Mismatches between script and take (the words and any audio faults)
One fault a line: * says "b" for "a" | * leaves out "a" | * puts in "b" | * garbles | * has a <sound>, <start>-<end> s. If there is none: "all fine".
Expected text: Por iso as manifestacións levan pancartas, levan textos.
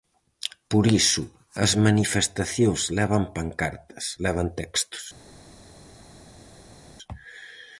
all fine